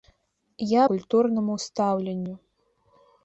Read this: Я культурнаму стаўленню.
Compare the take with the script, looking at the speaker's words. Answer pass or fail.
pass